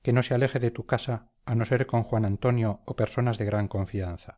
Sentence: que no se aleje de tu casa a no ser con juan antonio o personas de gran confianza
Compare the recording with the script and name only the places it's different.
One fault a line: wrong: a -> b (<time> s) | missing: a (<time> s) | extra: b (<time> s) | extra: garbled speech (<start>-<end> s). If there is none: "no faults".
no faults